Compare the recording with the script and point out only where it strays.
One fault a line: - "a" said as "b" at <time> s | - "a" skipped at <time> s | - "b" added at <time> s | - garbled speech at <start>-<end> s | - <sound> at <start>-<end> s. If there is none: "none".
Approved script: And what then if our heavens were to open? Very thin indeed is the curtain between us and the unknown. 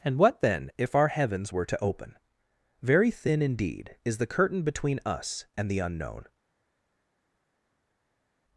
none